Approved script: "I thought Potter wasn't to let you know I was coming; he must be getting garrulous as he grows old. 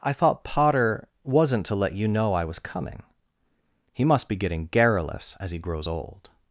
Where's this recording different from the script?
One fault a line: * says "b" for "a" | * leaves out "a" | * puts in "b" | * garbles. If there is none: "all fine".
all fine